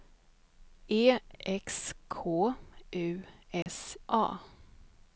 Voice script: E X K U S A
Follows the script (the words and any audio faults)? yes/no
no